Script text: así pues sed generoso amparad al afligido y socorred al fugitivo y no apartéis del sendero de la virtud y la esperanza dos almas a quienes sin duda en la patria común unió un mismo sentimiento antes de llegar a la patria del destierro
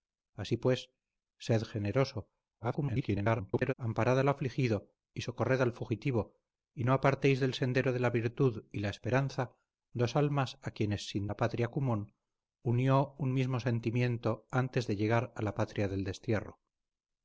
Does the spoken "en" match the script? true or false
false